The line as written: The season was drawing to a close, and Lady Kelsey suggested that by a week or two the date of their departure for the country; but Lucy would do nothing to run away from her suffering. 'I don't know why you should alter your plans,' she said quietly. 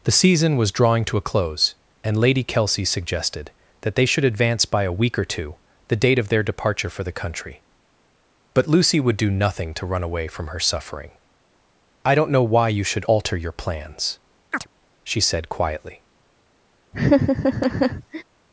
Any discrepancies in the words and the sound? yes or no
yes